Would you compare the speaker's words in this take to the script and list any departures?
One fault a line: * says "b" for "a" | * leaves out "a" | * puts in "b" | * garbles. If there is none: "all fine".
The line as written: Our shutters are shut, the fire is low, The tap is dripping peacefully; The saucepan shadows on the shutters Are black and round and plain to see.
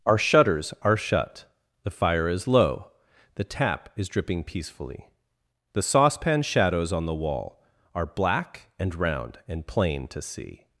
* says "wall" for "shutters"